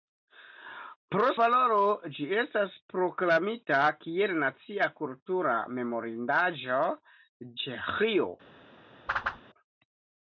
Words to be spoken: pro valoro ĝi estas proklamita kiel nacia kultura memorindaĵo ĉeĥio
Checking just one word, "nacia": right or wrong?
right